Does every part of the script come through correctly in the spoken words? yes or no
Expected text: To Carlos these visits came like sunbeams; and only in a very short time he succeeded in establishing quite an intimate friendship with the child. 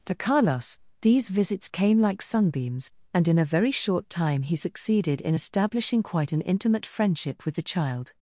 no